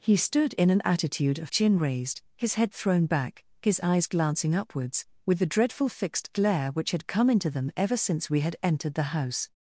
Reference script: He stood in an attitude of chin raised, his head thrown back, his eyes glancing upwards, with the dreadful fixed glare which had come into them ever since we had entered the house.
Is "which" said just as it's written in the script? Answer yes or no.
yes